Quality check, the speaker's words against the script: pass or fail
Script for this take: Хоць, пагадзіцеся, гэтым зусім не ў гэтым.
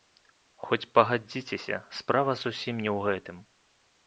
fail